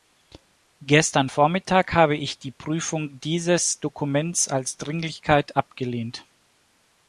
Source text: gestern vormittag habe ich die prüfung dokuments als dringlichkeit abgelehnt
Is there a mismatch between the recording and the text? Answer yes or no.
yes